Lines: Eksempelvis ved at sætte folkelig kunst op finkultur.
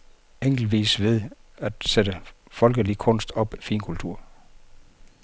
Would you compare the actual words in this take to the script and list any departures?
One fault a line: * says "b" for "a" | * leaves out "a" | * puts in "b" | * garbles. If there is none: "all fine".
all fine